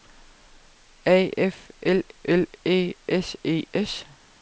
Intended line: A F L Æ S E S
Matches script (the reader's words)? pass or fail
fail